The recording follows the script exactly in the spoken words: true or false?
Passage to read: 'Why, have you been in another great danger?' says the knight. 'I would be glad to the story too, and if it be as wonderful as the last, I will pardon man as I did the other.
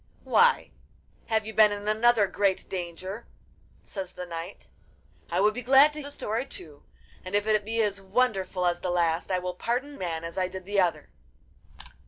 true